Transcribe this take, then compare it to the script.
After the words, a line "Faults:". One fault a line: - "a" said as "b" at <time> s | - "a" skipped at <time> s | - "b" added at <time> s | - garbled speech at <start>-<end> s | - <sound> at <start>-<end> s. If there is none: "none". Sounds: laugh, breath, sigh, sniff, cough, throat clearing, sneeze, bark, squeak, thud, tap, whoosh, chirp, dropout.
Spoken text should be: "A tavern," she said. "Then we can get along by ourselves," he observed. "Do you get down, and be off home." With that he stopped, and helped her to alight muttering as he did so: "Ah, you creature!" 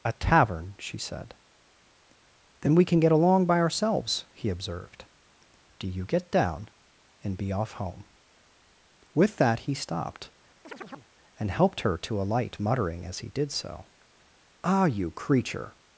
"A tavern," she said. "Then we can get along by ourselves," he observed. "Do you get down, and be off home." With that he stopped, and helped her to alight muttering as he did so: "Ah, you creature!"
Faults:
- chirp at 10.6-11.1 s